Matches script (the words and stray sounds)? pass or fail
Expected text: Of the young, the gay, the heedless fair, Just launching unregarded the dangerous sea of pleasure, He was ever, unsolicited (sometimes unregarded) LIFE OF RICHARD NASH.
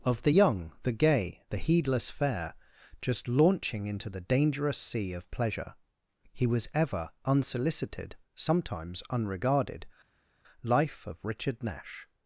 fail